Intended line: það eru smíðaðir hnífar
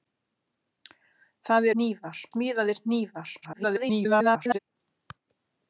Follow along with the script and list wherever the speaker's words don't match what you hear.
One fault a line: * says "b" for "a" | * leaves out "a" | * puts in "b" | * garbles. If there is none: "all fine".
* says "hnífar" for "eru"
* garbles